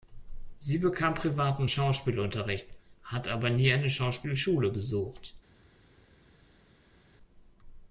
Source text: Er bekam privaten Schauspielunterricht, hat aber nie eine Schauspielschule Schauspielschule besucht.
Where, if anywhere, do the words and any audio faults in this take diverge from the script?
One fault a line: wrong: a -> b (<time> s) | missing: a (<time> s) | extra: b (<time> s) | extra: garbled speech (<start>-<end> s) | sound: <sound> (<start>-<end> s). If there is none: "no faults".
wrong: Er -> Sie (0.6 s)
missing: Schauspielschule (4.7 s)